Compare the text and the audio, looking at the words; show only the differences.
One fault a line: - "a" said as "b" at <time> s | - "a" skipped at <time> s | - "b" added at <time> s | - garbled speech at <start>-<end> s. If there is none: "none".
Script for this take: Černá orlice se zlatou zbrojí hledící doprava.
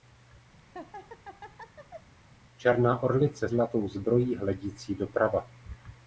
- "se" skipped at 3.5 s